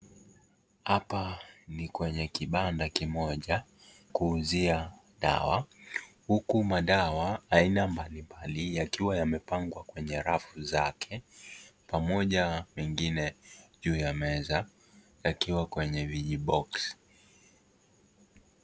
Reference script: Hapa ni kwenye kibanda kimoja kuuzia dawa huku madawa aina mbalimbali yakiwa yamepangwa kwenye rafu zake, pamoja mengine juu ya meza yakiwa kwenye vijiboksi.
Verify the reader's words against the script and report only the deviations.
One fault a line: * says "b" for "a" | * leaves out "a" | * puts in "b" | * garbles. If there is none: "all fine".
all fine